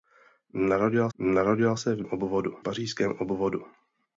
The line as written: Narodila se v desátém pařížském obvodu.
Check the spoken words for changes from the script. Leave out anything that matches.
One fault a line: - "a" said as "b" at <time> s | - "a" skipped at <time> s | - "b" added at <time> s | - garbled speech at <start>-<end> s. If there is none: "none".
- "narodila" added at 1.2 s
- "desátém" said as "obvodu" at 2.0 s